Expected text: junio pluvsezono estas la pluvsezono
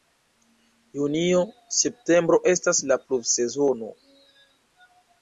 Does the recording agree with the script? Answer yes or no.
no